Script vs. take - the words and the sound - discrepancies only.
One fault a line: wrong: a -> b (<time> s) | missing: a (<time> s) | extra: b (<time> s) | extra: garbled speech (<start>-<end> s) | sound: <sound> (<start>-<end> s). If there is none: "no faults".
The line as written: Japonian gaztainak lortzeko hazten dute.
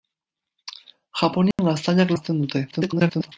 sound: dropout (1.5-1.6 s)
missing: lortzeko (2.1 s)
extra: garbled speech (2.7-3.3 s)